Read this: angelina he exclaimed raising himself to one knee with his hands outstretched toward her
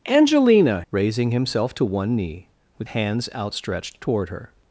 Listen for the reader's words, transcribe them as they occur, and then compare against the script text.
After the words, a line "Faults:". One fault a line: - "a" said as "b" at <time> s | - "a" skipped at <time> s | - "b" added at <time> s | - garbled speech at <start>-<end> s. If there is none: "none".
angelina raising himself to one knee with hands outstretched toward her
Faults:
- "he exclaimed" skipped at 0.8 s
- "his" skipped at 2.9 s